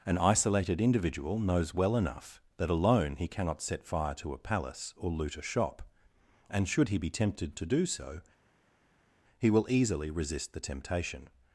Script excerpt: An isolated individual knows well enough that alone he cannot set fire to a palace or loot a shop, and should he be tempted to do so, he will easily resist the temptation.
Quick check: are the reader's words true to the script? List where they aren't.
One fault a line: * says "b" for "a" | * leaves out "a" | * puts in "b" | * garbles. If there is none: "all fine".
all fine